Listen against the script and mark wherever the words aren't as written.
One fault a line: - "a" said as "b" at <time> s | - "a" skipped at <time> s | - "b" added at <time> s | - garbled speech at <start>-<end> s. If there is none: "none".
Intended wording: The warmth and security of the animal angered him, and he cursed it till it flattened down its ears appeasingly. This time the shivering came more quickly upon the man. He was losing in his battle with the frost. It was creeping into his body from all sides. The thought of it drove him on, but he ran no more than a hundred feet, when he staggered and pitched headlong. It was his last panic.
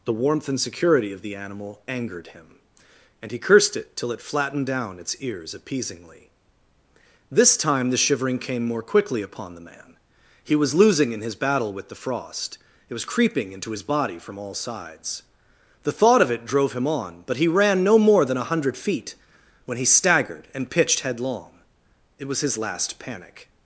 none